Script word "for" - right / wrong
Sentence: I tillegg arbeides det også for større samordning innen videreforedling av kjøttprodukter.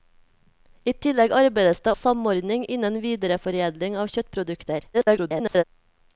wrong